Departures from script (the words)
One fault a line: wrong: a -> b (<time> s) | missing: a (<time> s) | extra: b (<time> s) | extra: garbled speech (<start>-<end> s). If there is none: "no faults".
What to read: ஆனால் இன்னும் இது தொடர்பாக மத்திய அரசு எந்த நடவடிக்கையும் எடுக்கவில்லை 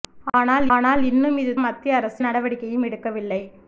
extra: ஆனால் (0.7 s)
missing: தொடர்பாக (1.5 s)
missing: எந்த (2.2 s)